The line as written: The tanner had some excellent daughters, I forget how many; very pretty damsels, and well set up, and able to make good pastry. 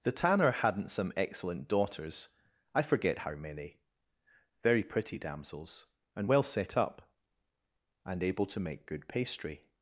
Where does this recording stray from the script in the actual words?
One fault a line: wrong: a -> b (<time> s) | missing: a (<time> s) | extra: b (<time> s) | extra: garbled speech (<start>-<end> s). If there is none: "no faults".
wrong: had -> hadn't (0.5 s)